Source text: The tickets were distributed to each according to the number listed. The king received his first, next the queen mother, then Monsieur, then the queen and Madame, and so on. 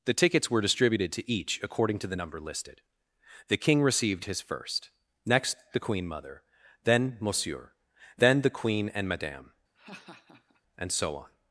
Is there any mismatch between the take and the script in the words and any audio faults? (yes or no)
yes